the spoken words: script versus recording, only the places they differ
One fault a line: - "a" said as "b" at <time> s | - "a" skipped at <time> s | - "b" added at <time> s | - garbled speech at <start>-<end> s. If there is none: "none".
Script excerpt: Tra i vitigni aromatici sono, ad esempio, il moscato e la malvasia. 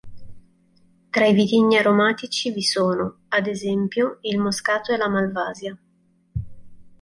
- "vi" added at 2.5 s